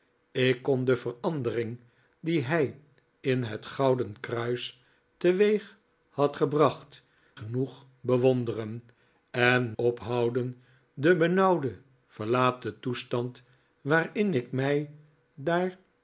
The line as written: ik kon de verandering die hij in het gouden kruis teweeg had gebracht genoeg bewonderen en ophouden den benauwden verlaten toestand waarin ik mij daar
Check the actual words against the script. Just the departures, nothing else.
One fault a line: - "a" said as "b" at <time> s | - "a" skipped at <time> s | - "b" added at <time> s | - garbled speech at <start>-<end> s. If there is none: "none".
none